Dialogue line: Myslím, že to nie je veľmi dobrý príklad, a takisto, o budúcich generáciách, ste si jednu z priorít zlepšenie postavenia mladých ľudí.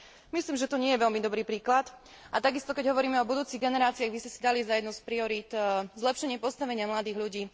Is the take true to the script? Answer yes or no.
no